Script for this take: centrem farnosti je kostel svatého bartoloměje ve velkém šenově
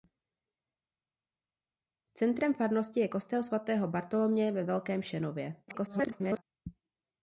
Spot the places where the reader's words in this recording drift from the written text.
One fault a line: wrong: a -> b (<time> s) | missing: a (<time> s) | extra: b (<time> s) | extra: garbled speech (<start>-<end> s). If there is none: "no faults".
extra: garbled speech (5.7-6.4 s)